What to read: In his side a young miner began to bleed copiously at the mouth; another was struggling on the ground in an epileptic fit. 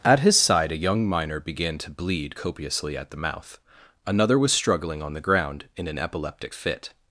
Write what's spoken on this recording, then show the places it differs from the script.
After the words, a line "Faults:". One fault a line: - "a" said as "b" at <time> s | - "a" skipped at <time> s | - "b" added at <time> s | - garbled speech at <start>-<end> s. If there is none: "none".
At his side a young miner began to bleed copiously at the mouth; another was struggling on the ground in an epileptic fit.
Faults:
- "In" said as "At" at 0.0 s